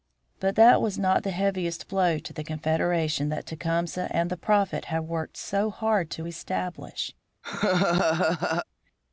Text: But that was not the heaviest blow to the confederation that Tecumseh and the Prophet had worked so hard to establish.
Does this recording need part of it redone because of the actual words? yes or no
no